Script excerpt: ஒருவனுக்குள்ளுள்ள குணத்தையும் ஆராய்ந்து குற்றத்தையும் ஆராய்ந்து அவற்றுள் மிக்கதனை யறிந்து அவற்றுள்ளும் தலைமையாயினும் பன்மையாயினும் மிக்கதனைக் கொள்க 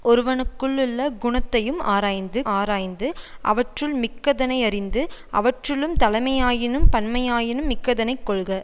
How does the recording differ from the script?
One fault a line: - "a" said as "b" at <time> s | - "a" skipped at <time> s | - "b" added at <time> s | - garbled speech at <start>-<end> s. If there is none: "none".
- "குற்றத்தையும்" skipped at 2.4 s